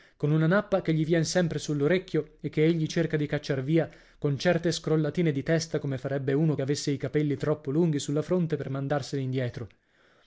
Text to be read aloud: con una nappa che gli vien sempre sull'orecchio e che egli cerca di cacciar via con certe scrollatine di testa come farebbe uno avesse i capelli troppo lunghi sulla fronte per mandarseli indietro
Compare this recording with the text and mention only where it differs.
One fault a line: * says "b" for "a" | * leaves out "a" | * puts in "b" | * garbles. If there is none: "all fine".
all fine